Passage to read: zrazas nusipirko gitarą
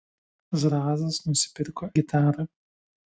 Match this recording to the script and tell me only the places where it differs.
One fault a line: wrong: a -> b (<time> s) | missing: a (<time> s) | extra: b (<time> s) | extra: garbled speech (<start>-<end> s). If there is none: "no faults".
no faults